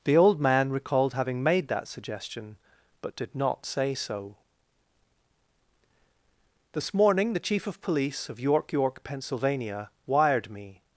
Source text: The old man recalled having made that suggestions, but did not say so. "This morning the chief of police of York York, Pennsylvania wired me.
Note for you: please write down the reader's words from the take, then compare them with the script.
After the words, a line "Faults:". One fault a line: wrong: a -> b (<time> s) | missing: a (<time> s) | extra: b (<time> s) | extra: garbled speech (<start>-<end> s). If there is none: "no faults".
The old man recalled having made that suggestion, but did not say so. "This morning the chief of police of York York, Pennsylvania wired me.
Faults:
wrong: suggestions -> suggestion (1.9 s)